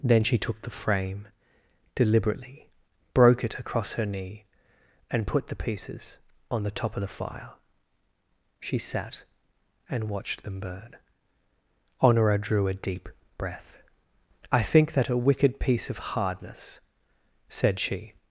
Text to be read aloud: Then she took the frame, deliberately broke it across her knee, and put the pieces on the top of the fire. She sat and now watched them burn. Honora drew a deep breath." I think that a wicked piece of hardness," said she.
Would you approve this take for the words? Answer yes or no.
no